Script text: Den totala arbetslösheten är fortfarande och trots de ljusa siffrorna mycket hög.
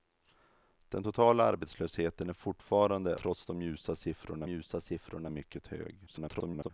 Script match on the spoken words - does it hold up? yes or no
no